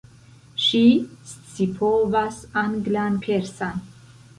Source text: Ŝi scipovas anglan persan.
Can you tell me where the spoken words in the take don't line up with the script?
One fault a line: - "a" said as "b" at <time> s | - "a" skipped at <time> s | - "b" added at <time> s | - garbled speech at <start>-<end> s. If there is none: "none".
none